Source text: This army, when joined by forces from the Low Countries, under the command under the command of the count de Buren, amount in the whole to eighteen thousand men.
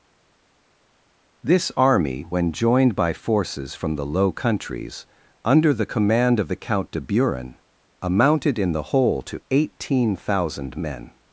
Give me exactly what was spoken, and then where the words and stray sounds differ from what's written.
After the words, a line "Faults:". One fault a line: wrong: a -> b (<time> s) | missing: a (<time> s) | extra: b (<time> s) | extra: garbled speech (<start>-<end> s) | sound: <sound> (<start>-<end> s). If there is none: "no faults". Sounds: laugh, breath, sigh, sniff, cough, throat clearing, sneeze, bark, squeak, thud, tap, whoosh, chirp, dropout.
This army, when joined by forces from the Low Countries, under the command of the count de Buren, amounted in the whole to eighteen thousand men.
Faults:
missing: under the command (6.4 s)
wrong: amount -> amounted (8.0 s)